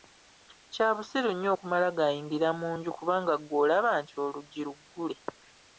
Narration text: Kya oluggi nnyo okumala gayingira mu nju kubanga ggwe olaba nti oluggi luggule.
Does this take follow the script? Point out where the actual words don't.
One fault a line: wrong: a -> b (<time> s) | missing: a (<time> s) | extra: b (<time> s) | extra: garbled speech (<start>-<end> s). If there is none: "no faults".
wrong: oluggi -> busiru (0.9 s)